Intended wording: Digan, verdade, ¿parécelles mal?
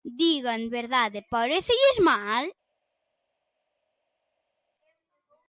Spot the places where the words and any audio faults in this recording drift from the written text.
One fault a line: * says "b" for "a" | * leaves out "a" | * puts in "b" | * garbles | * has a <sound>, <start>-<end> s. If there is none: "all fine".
all fine